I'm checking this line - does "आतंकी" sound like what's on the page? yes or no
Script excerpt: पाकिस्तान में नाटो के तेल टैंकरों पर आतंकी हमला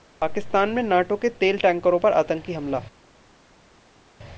yes